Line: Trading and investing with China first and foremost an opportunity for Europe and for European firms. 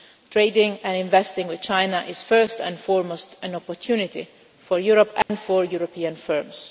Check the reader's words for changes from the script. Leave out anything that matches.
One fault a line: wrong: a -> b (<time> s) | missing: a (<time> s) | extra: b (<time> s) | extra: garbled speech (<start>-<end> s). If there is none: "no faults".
extra: is (2.1 s)